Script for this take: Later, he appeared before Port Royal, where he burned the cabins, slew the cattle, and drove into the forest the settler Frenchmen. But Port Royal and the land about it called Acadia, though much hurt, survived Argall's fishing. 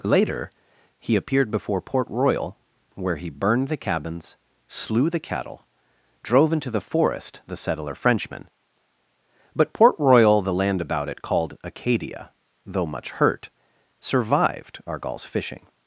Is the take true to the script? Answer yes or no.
no